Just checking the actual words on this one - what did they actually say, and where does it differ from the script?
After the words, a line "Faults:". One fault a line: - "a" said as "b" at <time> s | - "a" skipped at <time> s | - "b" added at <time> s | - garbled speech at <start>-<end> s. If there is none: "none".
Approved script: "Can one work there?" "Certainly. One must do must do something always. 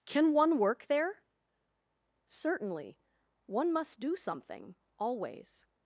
"Can one work there?" "Certainly. One must do something always.
Faults:
- "must do" skipped at 4.2 s